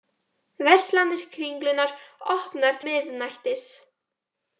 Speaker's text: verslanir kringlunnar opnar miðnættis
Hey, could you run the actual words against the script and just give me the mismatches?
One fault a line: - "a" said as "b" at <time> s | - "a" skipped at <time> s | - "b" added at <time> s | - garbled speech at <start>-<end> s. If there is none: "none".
none